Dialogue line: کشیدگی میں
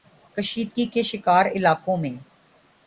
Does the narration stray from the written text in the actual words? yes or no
yes